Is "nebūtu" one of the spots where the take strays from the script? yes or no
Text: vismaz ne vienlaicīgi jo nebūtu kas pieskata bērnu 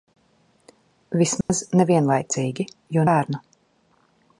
yes